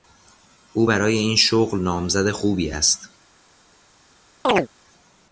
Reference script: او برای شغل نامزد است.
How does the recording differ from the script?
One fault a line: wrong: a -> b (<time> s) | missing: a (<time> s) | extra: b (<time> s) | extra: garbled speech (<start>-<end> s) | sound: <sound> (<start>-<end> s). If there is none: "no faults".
extra: این (1.2 s)
extra: خوبی (2.3 s)
sound: chirp (4.4-4.7 s)